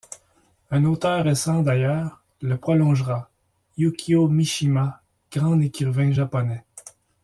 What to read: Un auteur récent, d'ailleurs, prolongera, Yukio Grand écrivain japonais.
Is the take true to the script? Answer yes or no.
no